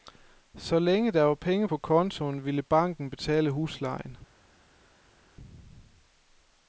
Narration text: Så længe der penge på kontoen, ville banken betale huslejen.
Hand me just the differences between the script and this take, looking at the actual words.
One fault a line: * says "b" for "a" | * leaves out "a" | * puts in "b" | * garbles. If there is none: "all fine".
* puts in "var"